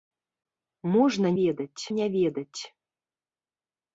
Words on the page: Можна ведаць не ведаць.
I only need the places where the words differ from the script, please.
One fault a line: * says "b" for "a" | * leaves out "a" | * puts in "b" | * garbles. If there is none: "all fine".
all fine